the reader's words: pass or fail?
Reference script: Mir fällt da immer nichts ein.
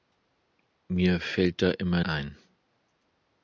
fail